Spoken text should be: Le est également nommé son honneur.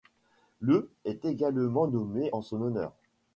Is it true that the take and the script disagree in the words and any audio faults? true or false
true